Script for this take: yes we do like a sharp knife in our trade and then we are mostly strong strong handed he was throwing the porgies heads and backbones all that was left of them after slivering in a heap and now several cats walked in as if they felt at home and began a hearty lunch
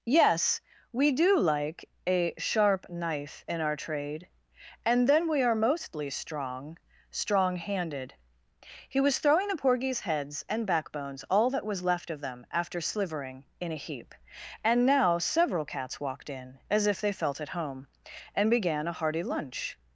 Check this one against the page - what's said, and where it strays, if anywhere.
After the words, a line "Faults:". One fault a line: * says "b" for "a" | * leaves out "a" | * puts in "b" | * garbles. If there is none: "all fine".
yes we do like a sharp knife in our trade and then we are mostly strong strong handed he was throwing the porgies heads and backbones all that was left of them after slivering in a heap and now several cats walked in as if they felt at home and began a hearty lunch
Faults:
all fine